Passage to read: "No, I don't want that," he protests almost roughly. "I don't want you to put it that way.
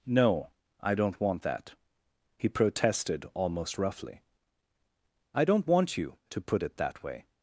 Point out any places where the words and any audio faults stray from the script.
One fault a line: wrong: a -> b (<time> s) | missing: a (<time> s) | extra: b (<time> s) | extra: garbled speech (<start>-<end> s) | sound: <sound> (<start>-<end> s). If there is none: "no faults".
wrong: protests -> protested (2.5 s)